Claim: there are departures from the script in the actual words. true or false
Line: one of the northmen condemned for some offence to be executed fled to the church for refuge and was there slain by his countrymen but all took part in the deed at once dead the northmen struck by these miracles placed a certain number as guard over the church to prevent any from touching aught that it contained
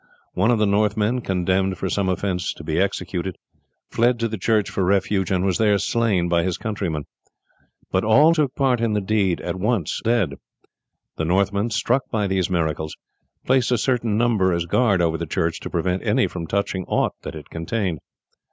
false